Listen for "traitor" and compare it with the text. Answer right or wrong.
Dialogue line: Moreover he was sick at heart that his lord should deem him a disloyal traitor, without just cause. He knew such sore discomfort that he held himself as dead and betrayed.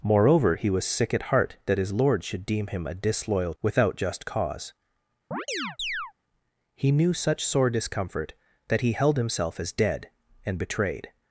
wrong